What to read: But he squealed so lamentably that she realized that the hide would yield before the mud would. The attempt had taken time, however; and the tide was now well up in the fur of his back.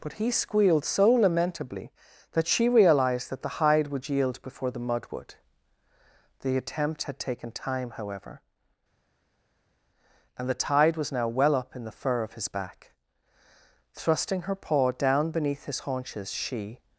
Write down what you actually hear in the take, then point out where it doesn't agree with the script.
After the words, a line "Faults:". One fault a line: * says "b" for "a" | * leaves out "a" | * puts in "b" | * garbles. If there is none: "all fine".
But he squealed so lamentably that she realized that the hide would yield before the mud would. The attempt had taken time, however; and the tide was now well up in the fur of his back. Thrusting her paw down beneath his haunches, she
Faults:
* puts in "Thrusting her paw down beneath his haunches she"